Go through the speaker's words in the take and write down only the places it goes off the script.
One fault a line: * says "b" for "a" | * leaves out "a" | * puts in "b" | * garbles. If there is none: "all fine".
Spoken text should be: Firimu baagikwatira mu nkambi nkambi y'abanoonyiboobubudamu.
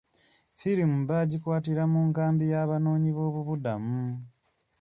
* leaves out "nkambi"